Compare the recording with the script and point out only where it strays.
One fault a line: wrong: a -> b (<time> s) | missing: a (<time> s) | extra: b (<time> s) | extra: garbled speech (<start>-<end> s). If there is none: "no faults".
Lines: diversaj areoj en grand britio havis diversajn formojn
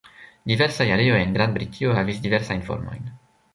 no faults